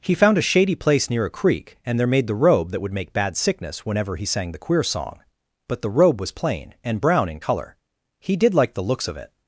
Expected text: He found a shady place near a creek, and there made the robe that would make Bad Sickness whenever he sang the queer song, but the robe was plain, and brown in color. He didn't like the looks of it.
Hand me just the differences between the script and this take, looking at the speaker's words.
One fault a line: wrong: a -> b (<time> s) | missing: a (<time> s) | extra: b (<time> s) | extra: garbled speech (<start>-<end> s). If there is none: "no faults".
wrong: didn't -> did (8.4 s)